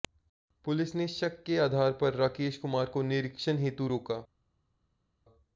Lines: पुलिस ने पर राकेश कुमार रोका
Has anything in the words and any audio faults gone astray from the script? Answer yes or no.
yes